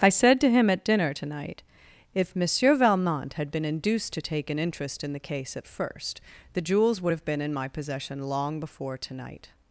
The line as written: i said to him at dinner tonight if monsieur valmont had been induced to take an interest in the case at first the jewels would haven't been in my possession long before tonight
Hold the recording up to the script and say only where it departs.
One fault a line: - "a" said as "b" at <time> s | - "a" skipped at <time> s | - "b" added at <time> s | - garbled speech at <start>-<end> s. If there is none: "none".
- "haven't" said as "have" at 7.1 s